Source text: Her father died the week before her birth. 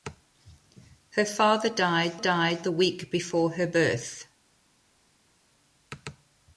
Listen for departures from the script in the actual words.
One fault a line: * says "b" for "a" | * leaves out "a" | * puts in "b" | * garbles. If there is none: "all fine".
* puts in "died"